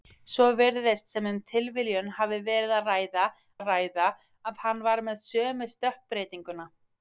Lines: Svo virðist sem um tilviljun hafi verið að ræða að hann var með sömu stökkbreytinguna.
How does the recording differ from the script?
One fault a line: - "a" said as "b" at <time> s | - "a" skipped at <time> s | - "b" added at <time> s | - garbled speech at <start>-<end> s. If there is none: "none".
- "ræða að" added at 3.7 s